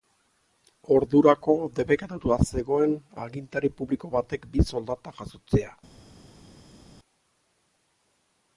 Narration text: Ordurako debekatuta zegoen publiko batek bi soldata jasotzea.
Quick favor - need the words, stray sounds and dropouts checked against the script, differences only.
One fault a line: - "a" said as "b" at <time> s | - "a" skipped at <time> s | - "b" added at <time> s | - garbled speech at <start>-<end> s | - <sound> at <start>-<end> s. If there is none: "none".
- "agintari" added at 3.3 s